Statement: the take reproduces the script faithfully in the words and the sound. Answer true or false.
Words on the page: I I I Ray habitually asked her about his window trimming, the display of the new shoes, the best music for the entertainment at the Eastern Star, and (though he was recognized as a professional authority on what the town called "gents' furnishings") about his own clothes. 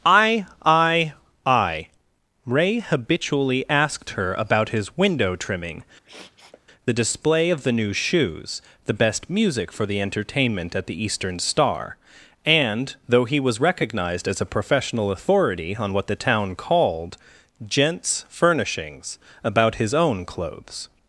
false